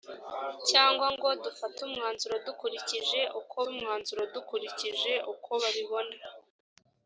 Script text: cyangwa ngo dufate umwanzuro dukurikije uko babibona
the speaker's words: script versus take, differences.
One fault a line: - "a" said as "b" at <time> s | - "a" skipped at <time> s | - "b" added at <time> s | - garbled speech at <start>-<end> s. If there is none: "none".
- "umwanzuro dukurikije uko" added at 3.7 s